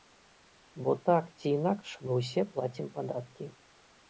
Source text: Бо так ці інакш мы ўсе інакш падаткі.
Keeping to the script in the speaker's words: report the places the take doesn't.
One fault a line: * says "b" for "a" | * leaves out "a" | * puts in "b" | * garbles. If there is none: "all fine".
* says "плацім" for "інакш"